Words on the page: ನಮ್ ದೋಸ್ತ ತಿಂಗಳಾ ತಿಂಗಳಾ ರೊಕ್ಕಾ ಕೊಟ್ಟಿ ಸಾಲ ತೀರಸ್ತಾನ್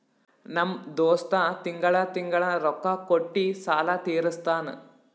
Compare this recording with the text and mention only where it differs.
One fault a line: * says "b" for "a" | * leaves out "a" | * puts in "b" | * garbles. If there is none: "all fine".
all fine